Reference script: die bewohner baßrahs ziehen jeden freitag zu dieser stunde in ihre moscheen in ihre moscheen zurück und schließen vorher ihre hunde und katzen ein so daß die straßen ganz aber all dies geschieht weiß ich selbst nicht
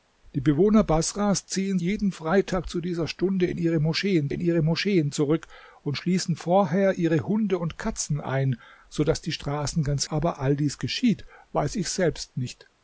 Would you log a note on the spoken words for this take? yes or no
no